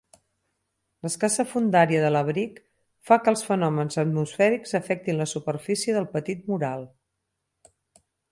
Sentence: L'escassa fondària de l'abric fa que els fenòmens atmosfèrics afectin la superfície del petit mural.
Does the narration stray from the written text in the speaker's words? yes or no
no